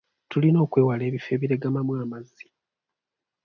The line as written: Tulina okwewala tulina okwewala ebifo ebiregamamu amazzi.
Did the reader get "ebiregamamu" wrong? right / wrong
right